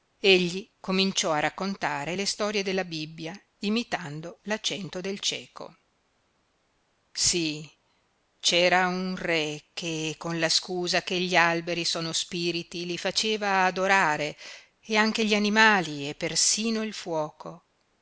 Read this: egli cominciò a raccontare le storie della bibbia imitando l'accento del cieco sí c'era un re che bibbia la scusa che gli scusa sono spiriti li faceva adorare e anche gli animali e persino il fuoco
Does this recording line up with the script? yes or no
no